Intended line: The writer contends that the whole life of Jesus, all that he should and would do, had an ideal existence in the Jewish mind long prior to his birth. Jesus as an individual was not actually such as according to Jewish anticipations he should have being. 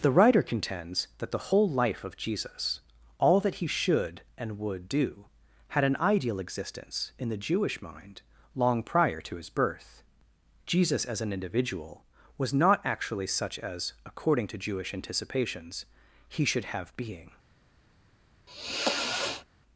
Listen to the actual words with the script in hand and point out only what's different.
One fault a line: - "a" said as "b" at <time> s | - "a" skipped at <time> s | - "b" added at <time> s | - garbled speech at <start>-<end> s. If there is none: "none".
none